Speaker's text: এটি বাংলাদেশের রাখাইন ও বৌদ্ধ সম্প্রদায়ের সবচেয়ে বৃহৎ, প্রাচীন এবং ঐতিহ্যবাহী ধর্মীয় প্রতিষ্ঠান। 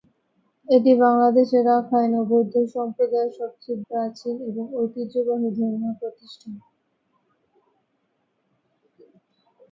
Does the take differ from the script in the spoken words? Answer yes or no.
yes